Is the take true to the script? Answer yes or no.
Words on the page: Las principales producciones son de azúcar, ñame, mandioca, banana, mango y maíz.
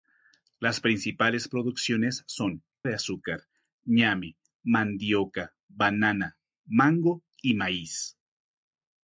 yes